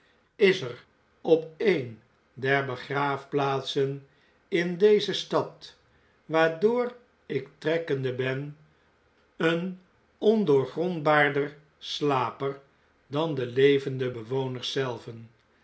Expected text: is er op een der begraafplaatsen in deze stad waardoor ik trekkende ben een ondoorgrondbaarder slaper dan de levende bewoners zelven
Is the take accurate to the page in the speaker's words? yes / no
yes